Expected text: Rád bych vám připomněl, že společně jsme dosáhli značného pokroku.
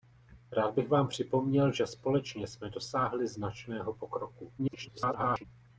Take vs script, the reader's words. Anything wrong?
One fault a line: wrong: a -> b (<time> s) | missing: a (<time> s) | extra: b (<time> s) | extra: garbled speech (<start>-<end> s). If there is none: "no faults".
extra: garbled speech (4.6-5.4 s)